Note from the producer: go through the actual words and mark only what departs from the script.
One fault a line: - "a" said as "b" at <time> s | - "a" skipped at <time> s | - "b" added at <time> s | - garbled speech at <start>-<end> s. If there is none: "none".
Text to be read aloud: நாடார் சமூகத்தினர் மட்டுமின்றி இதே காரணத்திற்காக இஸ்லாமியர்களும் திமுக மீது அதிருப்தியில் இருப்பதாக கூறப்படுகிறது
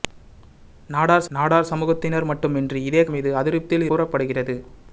- "நாடார்" added at 1.3 s
- "காரணத்திற்காக இஸ்லாமியர்களும் திமுக" skipped at 3.0 s
- "இருப்பதாக" skipped at 3.9 s